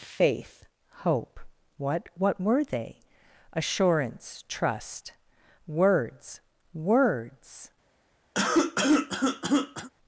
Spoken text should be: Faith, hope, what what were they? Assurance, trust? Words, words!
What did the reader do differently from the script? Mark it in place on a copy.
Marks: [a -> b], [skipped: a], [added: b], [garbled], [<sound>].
Faith, hope, what what were they? Assurance, trust? Words, words! [cough]